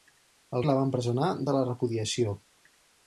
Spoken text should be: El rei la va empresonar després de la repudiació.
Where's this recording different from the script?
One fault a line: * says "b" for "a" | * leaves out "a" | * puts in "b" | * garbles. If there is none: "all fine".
* leaves out "rei"
* leaves out "després"